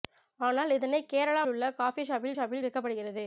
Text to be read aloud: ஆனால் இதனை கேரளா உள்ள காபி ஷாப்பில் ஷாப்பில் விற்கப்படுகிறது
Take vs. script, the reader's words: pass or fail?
pass